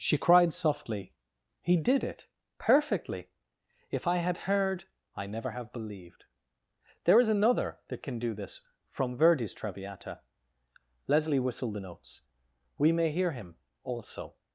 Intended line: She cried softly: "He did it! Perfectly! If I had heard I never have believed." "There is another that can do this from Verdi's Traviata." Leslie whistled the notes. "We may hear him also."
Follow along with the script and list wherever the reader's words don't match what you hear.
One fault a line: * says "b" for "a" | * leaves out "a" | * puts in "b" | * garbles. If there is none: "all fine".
all fine